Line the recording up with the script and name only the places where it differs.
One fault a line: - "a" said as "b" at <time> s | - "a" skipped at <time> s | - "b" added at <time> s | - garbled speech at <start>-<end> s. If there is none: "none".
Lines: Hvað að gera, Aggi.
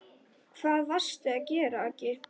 - "varstu" added at 0.9 s